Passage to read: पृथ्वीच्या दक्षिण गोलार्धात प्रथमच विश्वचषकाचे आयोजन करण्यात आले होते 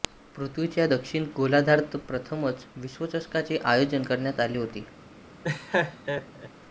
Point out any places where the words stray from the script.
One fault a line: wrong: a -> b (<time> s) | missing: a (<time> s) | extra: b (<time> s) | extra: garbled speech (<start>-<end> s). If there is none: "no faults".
no faults